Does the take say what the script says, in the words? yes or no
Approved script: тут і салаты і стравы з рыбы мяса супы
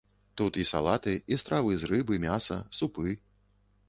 yes